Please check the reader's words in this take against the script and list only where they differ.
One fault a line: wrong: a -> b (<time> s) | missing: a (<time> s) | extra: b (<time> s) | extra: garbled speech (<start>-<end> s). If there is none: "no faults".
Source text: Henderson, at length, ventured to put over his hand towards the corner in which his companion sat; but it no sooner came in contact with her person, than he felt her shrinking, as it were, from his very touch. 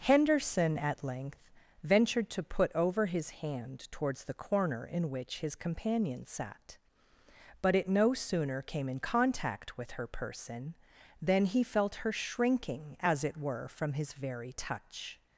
no faults